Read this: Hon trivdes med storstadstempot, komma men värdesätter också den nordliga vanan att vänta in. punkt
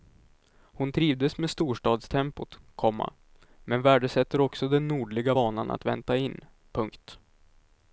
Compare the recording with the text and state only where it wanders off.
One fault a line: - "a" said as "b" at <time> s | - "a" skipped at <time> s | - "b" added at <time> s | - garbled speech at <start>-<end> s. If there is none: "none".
none